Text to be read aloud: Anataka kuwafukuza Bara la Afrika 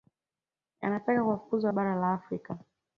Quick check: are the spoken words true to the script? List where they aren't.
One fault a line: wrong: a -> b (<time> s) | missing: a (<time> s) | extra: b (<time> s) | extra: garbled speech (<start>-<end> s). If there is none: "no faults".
no faults